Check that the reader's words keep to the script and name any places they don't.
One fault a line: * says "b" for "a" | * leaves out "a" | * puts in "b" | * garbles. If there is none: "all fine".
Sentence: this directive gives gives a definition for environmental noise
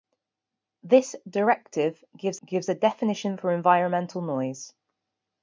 all fine